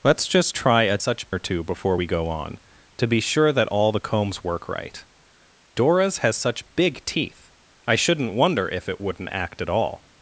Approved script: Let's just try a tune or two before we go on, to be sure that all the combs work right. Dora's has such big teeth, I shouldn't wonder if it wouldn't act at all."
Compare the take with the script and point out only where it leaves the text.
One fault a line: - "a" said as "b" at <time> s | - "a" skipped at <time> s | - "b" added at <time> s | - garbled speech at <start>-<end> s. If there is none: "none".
- "tune" said as "such" at 1.0 s